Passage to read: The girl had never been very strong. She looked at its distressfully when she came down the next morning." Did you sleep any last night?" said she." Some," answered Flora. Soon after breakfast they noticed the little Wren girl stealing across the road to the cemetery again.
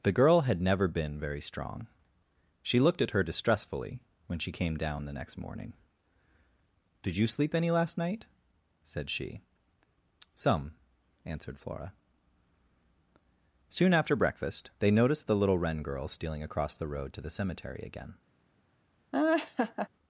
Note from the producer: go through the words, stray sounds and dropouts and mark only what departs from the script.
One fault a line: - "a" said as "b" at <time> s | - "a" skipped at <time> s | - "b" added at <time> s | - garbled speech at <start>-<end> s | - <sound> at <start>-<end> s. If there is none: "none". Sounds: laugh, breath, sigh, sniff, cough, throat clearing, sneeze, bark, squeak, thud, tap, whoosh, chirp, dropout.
- "its" said as "her" at 3.1 s
- laugh at 19.1-19.9 s